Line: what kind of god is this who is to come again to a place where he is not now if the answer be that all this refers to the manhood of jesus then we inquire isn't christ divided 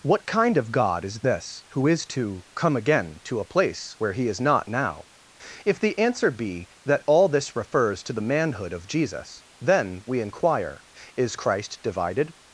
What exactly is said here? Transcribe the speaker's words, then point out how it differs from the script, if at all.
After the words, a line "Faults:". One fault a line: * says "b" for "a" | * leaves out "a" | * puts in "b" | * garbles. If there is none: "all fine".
what kind of god is this who is to come again to a place where he is not now if the answer be that all this refers to the manhood of jesus then we inquire is christ divided
Faults:
* says "is" for "isn't"